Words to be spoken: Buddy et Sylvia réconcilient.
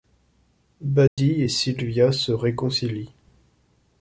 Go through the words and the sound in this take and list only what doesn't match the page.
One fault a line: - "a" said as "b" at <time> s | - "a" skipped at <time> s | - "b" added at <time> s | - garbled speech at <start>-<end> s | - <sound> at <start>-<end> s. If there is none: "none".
- dropout at 1.1-1.2 s
- "se" added at 2.1 s